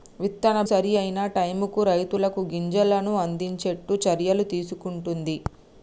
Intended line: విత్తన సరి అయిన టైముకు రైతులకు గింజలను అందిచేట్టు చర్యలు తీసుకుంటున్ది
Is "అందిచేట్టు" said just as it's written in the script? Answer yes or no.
yes